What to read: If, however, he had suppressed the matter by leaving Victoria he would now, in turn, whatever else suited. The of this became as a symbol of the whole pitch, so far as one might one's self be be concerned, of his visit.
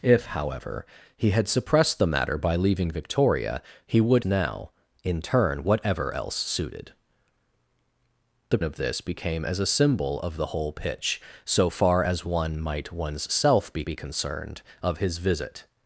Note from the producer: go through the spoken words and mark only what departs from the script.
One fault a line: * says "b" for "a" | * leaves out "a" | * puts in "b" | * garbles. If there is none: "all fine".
all fine